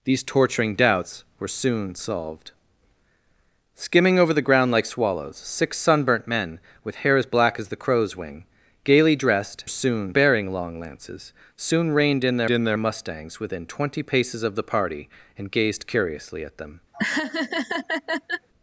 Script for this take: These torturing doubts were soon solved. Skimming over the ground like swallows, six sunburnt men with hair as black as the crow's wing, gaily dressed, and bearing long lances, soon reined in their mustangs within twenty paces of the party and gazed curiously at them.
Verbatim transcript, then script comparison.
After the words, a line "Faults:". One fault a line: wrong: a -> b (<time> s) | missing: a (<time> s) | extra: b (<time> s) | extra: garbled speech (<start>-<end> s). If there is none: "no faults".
These torturing doubts were soon solved. Skimming over the ground like swallows, six sunburnt men with hair as black as the crow's wing, gaily dressed, soon bearing long lances, soon reined in their in their mustangs within twenty paces of the party and gazed curiously at them.
Faults:
wrong: and -> soon (9.7 s)
extra: in their (12.5 s)